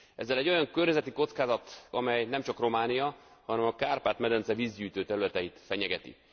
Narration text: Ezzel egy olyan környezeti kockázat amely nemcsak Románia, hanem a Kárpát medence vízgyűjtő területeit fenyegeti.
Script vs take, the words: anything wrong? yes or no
no